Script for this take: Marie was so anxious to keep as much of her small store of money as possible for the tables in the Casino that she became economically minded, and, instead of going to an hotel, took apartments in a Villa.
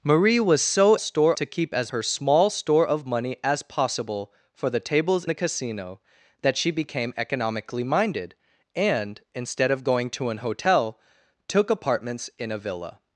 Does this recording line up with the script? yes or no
no